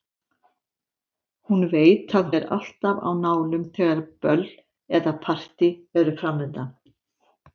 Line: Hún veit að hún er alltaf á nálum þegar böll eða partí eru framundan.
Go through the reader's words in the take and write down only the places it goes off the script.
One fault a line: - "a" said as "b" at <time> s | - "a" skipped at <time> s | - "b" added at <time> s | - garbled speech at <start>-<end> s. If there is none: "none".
- "hún" skipped at 2.3 s